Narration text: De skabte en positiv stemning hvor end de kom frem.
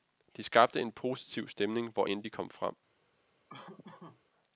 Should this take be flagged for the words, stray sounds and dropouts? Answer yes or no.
yes